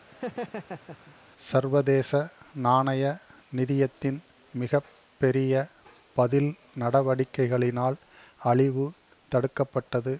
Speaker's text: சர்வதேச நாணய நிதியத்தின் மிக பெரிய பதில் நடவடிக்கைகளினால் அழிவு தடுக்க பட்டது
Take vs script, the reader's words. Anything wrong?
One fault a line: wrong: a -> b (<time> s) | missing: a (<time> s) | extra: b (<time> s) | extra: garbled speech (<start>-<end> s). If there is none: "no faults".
no faults